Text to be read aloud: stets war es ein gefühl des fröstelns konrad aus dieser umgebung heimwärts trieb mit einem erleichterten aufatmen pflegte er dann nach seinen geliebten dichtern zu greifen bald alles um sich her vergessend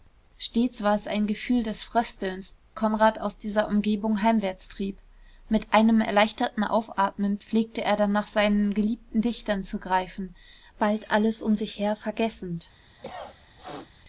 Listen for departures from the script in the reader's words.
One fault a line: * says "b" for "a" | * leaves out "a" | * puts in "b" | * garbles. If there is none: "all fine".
all fine